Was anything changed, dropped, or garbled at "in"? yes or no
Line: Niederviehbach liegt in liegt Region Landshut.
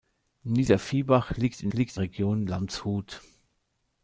no